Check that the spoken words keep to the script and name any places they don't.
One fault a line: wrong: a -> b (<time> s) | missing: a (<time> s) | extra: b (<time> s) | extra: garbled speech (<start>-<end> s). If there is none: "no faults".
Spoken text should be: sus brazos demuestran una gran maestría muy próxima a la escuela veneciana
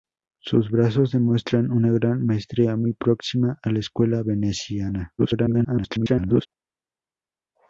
extra: garbled speech (5.2-6.5 s)